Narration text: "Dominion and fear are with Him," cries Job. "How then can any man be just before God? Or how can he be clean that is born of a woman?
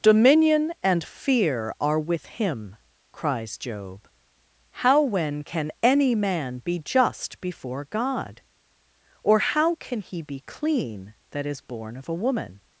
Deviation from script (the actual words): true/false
true